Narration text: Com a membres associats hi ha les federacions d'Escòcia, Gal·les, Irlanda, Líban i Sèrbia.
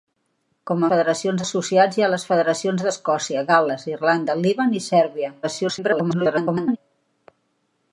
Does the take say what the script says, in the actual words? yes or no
no